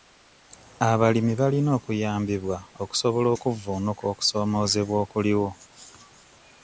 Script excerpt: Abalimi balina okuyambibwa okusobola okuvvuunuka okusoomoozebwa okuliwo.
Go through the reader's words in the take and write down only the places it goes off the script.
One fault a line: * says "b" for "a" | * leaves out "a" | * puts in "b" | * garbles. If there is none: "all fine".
all fine